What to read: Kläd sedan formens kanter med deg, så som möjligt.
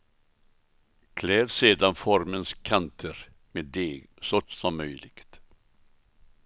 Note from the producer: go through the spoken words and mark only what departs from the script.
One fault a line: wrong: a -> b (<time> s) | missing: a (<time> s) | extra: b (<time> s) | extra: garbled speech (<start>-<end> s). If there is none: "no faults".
no faults